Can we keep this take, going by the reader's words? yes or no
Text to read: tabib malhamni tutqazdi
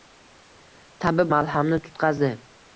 yes